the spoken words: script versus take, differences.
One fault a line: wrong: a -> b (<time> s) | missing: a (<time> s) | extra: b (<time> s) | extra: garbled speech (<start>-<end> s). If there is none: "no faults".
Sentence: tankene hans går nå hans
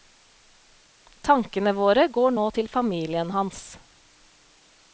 wrong: hans -> våre (1.8 s)
extra: til familien (2.6 s)